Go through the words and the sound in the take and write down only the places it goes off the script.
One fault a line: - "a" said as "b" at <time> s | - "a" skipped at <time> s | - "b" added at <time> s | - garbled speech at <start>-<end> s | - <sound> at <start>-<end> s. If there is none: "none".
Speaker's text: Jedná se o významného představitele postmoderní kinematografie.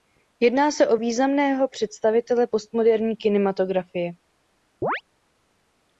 - chirp at 4.8-5.0 s